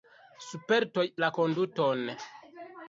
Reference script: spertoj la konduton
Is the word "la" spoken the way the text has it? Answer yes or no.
yes